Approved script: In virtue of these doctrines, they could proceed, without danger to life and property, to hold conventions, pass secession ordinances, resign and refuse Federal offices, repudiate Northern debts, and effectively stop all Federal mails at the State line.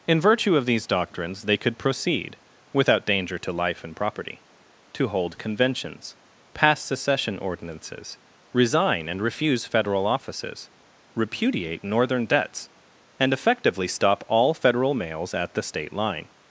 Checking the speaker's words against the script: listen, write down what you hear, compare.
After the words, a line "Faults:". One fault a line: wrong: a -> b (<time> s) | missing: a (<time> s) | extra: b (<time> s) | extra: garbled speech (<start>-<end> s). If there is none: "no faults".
In virtue of these doctrines, they could proceed, without danger to life and property, to hold conventions, pass secession ordinances, resign and refuse Federal offices, repudiate Northern debts, and effectively stop all Federal mails at the State line.
Faults:
no faults